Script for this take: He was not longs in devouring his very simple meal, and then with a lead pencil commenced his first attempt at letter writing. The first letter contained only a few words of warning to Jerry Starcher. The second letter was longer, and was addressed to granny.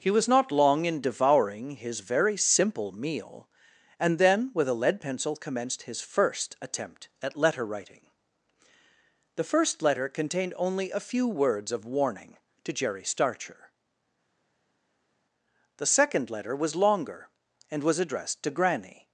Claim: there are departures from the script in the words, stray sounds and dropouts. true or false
true